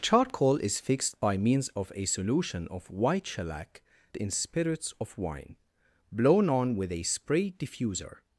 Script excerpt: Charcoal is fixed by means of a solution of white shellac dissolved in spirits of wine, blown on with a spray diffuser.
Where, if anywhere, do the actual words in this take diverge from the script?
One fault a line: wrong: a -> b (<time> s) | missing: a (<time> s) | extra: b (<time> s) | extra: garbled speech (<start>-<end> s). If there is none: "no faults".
missing: dissolved (3.8 s)